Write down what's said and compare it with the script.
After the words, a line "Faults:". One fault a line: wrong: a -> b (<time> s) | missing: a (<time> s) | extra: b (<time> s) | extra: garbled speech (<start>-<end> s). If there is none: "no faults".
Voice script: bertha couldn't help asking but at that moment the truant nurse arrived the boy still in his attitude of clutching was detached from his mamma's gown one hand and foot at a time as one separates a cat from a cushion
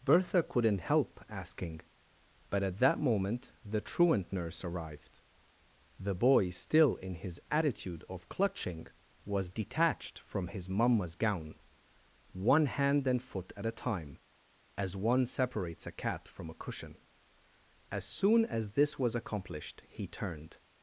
bertha couldn't help asking but at that moment the truant nurse arrived the boy still in his attitude of clutching was detached from his mamma's gown one hand and foot at a time as one separates a cat from a cushion as soon as this was accomplished he turned
Faults:
extra: as soon as this was accomplished he turned (17.9 s)